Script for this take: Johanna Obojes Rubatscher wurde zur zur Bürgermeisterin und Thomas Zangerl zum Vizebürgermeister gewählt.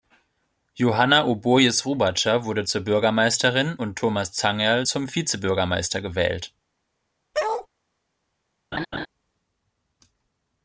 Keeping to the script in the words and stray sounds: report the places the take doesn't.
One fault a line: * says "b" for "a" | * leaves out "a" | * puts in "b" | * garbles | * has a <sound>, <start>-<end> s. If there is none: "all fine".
* leaves out "zur"
* has a bark, 7.3-7.7 s
* has a laugh, 8.7-9.1 s